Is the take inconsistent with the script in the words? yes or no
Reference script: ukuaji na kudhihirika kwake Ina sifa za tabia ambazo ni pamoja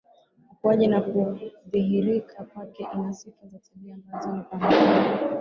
no